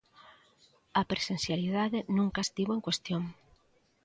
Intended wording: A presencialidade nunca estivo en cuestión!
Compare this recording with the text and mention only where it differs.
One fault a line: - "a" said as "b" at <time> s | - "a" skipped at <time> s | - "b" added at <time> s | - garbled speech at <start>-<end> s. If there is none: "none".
none